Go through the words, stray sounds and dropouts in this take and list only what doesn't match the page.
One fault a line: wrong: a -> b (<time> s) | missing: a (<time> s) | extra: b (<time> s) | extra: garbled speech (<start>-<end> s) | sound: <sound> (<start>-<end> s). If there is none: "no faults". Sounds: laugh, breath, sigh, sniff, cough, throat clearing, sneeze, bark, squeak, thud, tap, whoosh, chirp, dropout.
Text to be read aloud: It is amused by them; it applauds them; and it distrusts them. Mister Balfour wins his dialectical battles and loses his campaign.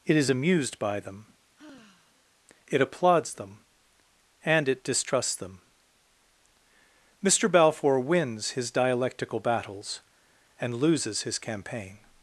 sound: sigh (1.6-2.3 s)